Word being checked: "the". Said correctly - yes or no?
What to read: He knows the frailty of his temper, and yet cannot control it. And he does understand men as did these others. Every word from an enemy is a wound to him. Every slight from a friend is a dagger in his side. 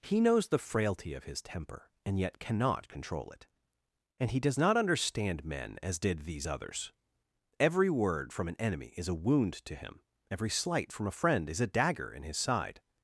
yes